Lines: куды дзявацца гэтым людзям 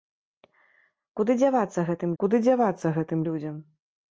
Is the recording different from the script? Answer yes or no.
yes